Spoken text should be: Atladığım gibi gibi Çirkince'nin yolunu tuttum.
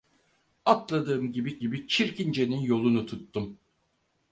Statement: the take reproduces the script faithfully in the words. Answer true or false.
true